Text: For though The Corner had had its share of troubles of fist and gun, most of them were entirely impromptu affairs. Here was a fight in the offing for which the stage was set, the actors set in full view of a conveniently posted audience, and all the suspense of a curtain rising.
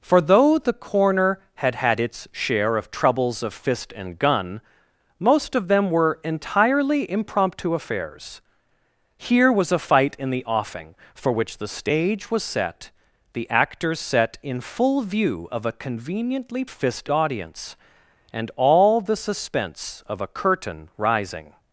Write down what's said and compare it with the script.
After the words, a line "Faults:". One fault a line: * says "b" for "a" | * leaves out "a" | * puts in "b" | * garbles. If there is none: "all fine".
For though The Corner had had its share of troubles of fist and gun, most of them were entirely impromptu affairs. Here was a fight in the offing for which the stage was set, the actors set in full view of a conveniently fist audience, and all the suspense of a curtain rising.
Faults:
* says "fist" for "posted"